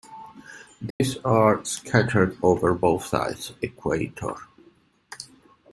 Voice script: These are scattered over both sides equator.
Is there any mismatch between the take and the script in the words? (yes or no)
no